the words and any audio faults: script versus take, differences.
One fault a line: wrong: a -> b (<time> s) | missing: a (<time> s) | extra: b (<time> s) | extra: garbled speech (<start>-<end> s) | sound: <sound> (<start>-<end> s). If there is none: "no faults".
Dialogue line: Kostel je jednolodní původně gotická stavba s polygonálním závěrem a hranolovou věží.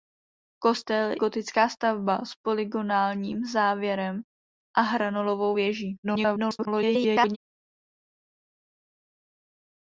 missing: je jednolodní původně (1.1 s)
extra: garbled speech (6.0-7.4 s)